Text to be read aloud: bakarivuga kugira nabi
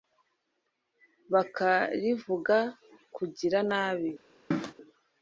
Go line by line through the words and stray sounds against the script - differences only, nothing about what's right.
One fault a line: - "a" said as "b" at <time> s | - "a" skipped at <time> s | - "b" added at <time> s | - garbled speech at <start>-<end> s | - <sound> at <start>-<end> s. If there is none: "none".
- cough at 4.5-4.7 s